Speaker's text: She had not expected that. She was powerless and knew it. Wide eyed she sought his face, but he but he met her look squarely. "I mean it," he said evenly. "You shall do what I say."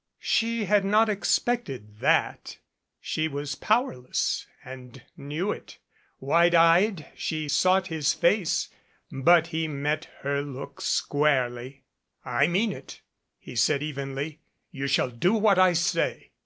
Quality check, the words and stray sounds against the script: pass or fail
fail